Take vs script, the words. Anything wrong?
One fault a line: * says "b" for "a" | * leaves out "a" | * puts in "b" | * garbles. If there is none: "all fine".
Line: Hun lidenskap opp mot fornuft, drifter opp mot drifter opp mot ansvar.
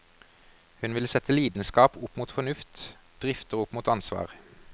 * puts in "vil sette"
* leaves out "drifter opp mot"